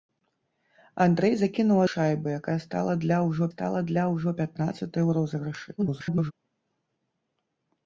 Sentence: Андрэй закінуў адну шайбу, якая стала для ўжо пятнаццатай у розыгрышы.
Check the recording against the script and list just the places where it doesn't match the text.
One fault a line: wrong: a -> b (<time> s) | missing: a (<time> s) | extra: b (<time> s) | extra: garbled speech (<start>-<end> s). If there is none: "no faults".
missing: адну (1.8 s)
extra: стала для ўжо (3.5 s)
extra: garbled speech (5.8-6.3 s)